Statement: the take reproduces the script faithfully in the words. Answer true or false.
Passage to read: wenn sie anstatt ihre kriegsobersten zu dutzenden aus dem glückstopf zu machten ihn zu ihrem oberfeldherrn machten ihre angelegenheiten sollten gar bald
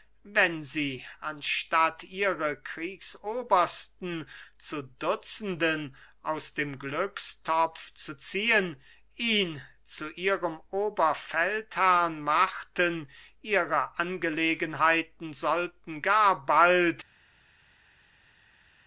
false